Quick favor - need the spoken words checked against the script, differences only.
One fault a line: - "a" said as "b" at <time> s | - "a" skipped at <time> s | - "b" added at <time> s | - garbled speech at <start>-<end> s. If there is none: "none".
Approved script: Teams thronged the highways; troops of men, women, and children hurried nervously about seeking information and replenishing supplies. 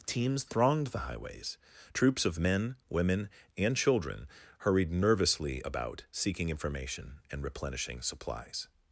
none